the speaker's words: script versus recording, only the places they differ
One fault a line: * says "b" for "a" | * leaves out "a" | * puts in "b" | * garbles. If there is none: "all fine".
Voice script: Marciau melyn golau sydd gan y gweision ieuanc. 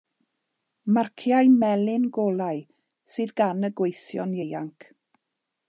all fine